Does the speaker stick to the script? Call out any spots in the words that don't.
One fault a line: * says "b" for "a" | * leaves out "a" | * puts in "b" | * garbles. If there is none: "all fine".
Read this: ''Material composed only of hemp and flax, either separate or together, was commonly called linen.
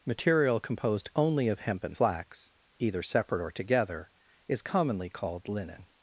* says "is" for "was"